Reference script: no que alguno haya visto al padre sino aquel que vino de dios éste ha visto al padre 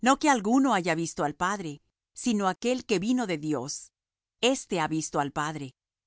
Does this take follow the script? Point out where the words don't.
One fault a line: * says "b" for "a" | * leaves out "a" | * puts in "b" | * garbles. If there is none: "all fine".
all fine